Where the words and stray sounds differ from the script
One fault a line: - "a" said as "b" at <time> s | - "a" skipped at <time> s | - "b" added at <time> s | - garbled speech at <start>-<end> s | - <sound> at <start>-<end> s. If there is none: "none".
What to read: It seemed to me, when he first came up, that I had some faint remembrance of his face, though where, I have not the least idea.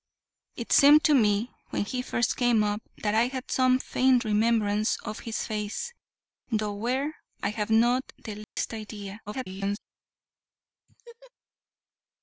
- dropout at 8.4-8.6 s
- garbled speech at 9.3-9.8 s
- laugh at 10.9-11.3 s